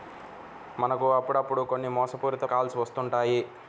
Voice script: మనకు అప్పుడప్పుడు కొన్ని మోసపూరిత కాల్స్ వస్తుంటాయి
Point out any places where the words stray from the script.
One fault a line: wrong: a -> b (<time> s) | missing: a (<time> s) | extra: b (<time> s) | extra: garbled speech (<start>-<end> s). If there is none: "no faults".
no faults